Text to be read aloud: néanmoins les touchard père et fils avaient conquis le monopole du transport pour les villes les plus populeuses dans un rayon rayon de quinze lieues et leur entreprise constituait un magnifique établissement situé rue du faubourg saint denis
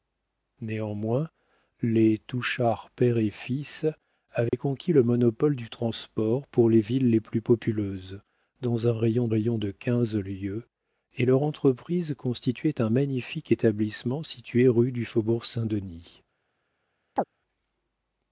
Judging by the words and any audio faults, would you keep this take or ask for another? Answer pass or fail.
fail